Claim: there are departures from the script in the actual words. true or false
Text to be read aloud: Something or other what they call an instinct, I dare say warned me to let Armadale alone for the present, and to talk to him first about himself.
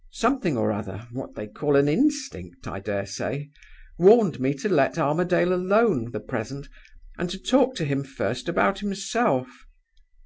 true